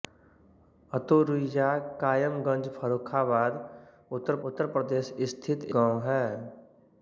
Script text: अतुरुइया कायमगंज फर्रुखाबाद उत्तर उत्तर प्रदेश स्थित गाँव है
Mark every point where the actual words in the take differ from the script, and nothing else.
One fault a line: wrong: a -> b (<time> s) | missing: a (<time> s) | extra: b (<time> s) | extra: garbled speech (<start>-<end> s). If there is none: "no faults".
no faults